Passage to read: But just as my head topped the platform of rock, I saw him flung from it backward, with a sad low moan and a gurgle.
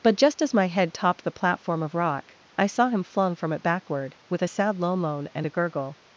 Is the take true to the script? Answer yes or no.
yes